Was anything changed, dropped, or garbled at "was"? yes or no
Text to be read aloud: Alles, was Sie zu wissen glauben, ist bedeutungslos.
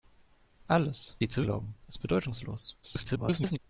yes